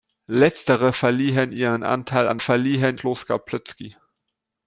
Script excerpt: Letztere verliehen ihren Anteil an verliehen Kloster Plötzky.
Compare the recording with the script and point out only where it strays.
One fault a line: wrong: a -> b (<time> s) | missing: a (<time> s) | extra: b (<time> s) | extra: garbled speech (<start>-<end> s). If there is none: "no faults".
no faults